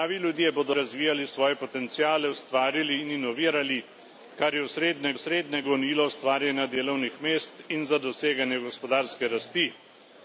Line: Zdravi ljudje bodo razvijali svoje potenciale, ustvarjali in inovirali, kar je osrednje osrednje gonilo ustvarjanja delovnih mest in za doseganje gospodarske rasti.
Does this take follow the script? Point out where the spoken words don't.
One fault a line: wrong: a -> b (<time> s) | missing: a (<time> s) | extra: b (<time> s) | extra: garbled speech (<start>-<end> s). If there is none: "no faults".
no faults